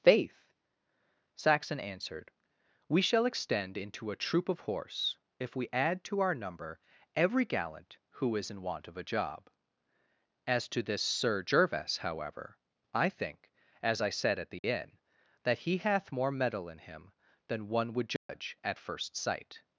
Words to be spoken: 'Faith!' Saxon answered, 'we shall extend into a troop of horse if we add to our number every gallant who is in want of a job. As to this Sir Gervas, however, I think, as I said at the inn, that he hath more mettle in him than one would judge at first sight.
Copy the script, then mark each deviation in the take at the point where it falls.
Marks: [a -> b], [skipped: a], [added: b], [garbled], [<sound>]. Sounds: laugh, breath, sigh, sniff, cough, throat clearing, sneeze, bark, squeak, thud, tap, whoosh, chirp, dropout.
'Faith!' Saxon answered, 'we shall extend into a troop of horse if we add to our number every gallant who is in want of a job. As to this Sir Gervas, however, I think, as I said at the [dropout] inn, that he hath more mettle in him than one would judge [dropout] at first sight.